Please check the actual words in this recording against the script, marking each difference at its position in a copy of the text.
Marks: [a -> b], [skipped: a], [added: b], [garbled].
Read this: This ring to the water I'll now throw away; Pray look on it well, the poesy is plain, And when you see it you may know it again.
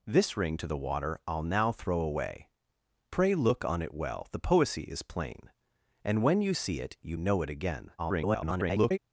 This ring to the water I'll now throw away; Pray look on it well, the poesy is plain, And when you see it you [skipped: may] know it again. [garbled]